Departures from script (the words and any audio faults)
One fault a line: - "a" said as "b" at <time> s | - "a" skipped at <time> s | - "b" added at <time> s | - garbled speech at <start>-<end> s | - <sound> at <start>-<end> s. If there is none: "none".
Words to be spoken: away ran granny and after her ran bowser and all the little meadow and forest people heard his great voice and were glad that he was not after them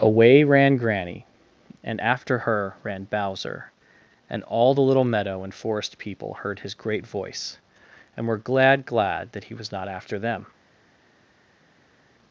- "glad" added at 8.8 s